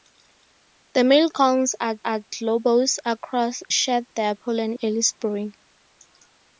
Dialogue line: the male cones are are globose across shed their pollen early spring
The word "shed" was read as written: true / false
true